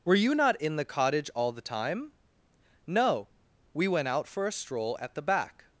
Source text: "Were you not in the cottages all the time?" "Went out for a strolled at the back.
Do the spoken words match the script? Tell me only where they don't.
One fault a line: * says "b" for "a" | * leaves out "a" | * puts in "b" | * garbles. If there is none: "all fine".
* says "cottage" for "cottages"
* puts in "No we"
* says "stroll" for "strolled"